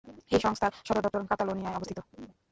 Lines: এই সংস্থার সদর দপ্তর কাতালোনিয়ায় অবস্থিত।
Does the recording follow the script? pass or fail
pass